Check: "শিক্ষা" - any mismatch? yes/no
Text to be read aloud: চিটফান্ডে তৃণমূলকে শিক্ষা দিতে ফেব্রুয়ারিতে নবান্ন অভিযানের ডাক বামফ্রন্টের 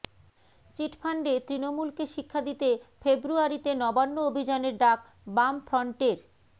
no